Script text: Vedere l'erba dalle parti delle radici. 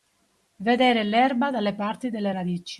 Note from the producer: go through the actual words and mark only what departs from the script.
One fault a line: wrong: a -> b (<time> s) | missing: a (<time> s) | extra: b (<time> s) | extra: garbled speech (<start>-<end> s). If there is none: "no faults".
no faults